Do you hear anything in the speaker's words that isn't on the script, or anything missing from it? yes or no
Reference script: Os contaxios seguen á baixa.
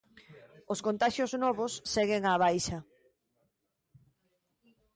yes